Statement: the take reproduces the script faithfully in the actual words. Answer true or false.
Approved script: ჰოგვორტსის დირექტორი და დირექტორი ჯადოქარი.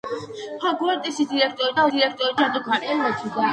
true